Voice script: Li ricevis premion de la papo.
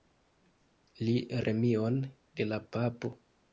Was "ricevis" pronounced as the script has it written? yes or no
no